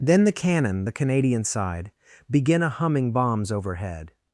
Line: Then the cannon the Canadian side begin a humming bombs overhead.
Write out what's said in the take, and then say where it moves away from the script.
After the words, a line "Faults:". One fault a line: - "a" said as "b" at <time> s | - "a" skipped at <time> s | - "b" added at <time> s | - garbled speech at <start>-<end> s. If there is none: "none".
Then the cannon the Canadian side begin a humming bombs overhead.
Faults:
none